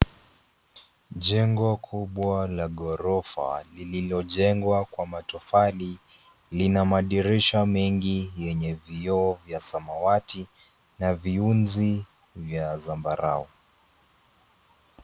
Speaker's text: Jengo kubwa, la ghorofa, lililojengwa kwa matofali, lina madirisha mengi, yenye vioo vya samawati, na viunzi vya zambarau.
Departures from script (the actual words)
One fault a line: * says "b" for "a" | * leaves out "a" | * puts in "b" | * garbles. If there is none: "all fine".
all fine